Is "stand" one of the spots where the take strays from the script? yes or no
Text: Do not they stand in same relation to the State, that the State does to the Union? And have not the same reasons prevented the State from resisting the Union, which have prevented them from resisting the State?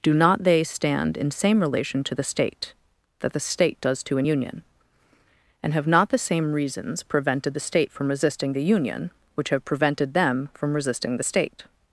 no